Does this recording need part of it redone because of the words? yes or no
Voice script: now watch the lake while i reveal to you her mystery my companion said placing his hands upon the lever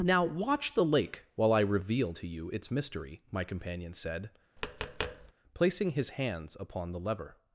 yes